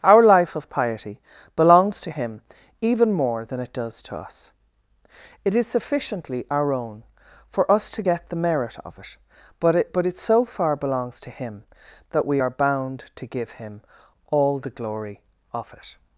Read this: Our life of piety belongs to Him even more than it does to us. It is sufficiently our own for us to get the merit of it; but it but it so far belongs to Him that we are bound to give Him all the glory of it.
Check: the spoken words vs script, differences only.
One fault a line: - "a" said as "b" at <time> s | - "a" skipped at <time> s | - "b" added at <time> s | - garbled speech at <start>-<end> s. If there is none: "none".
none